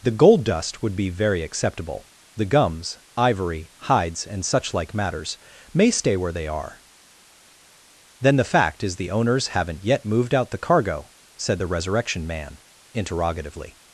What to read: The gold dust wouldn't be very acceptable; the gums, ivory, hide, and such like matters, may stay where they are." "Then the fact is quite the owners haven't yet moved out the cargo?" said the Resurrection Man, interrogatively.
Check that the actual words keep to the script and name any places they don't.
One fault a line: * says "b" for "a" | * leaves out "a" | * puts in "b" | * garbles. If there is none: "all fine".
* says "would" for "wouldn't"
* says "hides" for "hide"
* leaves out "quite"